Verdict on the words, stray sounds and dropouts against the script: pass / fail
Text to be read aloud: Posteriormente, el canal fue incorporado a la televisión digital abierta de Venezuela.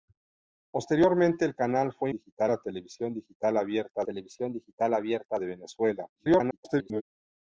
fail